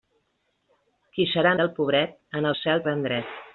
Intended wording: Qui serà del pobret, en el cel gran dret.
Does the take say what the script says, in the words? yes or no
yes